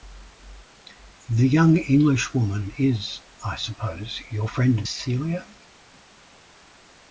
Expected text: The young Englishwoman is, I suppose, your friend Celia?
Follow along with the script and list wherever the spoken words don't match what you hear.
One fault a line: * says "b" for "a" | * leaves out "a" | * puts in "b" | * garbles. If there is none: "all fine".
all fine